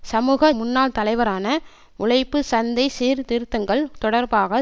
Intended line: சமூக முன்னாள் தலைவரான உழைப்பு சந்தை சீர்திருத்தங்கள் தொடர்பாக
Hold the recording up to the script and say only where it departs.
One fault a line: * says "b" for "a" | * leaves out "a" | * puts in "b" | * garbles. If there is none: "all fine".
all fine